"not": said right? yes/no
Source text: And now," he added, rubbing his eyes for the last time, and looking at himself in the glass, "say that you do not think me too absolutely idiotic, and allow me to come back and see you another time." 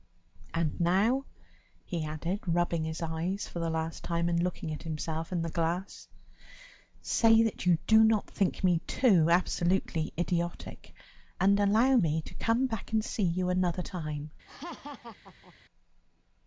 yes